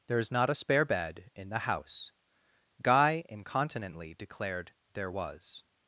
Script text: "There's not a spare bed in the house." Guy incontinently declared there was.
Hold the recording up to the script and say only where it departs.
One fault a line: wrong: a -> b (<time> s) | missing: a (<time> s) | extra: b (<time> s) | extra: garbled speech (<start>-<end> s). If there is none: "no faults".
no faults